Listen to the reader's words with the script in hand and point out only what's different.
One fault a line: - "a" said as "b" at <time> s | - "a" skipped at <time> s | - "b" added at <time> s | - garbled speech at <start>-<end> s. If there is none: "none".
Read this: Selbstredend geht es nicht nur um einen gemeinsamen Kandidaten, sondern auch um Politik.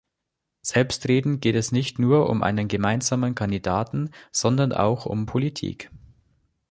none